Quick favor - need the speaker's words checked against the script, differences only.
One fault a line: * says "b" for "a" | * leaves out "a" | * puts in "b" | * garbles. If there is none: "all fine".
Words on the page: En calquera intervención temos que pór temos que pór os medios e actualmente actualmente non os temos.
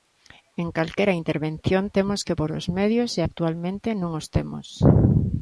* leaves out "temos que pór"
* leaves out "actualmente"